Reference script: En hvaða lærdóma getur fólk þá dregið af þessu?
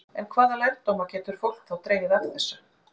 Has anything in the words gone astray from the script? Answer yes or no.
no